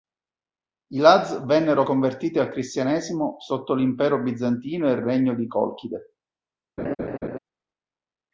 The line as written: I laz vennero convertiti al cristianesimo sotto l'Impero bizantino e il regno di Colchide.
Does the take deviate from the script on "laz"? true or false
false